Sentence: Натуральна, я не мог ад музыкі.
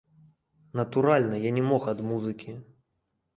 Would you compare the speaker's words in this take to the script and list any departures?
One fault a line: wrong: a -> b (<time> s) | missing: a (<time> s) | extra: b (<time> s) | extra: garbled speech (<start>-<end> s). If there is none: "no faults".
no faults